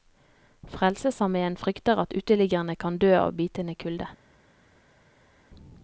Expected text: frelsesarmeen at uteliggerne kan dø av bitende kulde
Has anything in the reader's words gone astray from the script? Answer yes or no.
yes